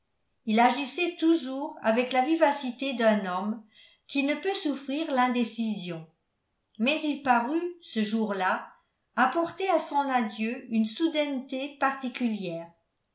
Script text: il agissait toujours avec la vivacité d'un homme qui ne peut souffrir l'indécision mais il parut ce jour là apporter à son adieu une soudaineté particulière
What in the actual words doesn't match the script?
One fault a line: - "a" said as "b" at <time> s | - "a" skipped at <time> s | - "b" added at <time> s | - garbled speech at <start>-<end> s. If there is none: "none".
none